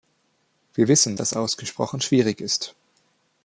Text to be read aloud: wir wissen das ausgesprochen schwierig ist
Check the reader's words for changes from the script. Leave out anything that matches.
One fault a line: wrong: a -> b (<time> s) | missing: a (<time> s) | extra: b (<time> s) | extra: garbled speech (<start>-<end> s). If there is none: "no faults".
no faults